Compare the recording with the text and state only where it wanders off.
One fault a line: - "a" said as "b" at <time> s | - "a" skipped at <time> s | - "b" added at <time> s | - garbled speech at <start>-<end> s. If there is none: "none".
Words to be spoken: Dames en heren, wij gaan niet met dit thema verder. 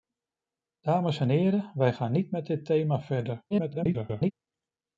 - garbled speech at 3.5-4.3 s